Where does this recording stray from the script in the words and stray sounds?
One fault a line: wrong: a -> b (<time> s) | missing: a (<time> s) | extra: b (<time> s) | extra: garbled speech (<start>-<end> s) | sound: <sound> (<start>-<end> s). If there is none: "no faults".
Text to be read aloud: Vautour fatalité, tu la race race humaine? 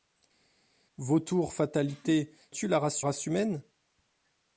no faults